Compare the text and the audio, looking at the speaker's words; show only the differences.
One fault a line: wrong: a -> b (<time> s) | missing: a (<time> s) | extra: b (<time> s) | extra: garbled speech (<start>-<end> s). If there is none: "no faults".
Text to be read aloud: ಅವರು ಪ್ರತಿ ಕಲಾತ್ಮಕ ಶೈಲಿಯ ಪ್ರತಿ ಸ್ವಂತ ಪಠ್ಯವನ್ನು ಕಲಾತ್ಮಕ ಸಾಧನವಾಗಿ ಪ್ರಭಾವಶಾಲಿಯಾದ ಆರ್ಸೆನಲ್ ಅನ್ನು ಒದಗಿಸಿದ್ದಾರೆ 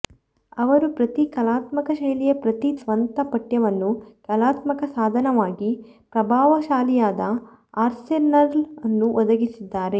no faults